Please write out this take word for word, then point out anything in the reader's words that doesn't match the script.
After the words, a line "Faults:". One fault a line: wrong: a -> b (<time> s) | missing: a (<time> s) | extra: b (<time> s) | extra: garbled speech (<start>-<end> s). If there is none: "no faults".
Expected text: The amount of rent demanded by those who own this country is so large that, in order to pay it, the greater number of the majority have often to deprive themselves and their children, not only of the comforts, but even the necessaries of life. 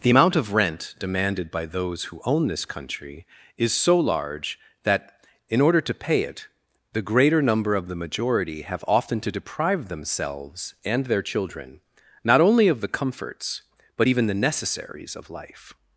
The amount of rent demanded by those who own this country is so large that, in order to pay it, the greater number of the majority have often to deprive themselves and their children, not only of the comforts, but even the necessaries of life.
Faults:
no faults